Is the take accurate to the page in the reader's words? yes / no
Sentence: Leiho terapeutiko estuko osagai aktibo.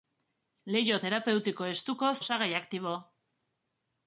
yes